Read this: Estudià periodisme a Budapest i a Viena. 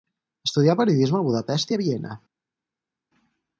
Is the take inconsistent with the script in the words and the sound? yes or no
no